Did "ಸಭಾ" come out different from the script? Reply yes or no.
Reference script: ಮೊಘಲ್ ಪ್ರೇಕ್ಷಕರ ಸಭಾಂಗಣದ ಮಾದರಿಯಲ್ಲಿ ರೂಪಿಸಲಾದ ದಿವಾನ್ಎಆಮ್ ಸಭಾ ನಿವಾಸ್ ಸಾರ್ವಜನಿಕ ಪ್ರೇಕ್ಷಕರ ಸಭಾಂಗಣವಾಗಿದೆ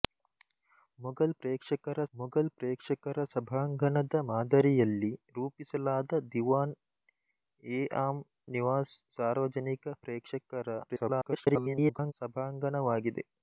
yes